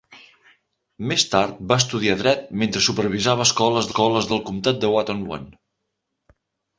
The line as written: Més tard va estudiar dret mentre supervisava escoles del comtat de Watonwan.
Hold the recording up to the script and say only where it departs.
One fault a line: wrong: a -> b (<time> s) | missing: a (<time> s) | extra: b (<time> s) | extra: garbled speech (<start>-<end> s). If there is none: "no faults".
extra: escoles (3.9 s)